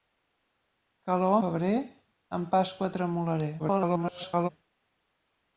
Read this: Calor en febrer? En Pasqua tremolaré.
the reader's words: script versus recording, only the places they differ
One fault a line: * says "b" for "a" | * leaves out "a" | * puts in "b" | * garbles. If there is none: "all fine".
* leaves out "en"
* garbles